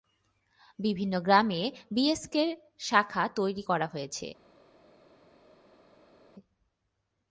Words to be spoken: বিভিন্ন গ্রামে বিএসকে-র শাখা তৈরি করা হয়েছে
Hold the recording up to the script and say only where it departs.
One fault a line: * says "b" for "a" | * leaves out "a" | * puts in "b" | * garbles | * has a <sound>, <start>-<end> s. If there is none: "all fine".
all fine